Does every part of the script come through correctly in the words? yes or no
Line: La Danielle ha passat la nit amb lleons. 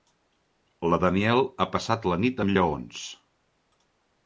yes